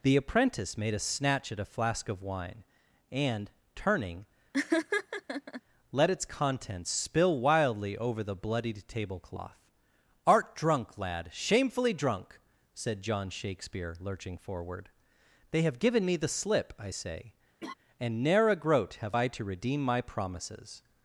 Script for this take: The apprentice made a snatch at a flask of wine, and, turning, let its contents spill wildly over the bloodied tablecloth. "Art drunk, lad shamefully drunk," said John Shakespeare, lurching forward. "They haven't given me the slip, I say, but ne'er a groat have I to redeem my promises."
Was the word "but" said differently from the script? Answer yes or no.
yes